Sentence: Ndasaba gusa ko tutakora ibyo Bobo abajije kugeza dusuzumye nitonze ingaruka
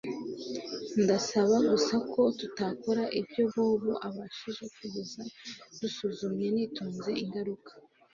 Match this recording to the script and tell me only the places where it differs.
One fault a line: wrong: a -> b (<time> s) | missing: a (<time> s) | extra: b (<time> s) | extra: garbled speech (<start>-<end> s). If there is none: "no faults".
no faults